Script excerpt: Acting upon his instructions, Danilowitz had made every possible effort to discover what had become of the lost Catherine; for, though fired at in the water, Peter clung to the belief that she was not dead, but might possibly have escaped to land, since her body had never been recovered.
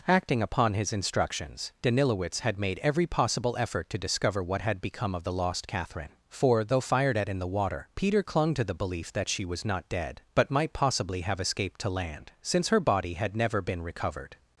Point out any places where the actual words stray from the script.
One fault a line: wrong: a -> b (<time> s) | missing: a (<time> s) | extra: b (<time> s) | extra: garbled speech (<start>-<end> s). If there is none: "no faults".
no faults